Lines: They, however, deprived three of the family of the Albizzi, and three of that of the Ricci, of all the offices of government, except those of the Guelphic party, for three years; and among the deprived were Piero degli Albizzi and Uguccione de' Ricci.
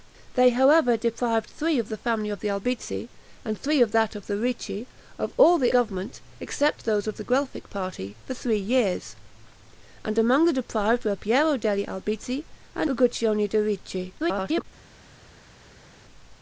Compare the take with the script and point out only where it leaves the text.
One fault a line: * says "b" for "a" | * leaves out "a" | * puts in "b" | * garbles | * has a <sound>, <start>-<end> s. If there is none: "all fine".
* leaves out "offices of"
* garbles